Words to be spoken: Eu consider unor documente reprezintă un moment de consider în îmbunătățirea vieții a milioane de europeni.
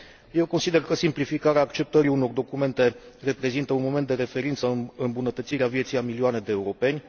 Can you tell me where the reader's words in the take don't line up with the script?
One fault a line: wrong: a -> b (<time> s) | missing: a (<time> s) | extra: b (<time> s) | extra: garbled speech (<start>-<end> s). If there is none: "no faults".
extra: că simplificarea acceptării (0.8 s)
wrong: consider -> referință (4.1 s)